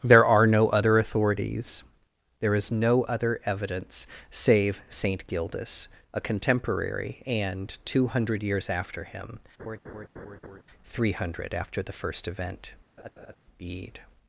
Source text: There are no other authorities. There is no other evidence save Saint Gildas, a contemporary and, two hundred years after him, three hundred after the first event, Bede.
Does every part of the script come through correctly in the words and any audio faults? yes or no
no